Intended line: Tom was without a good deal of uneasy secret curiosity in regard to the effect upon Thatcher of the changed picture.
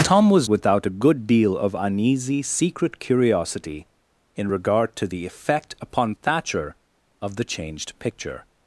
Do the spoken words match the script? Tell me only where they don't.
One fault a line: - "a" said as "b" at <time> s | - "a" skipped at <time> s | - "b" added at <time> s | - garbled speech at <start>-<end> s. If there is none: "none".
none